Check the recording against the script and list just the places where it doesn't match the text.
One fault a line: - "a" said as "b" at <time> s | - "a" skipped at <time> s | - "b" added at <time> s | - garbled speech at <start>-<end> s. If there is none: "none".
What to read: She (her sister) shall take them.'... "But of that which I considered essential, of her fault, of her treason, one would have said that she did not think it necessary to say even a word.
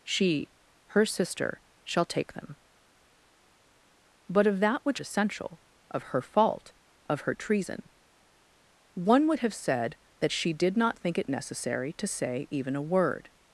- "I considered" skipped at 5.0 s